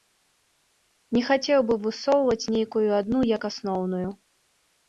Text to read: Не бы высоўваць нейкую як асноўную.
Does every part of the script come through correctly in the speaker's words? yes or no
no